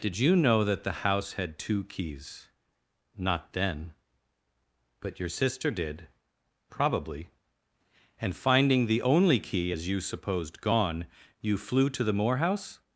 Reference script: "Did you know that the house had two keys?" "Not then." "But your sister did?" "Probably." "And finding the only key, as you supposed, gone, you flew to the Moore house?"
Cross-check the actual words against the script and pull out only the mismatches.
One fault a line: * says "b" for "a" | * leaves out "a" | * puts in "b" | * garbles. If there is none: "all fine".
all fine